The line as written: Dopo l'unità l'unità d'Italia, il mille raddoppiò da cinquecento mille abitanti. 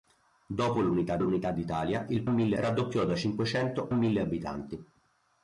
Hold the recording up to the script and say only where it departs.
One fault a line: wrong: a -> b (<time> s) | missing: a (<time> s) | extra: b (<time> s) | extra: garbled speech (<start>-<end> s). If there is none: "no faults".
no faults